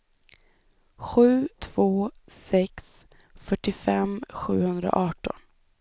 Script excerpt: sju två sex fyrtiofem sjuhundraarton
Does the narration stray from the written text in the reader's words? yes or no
no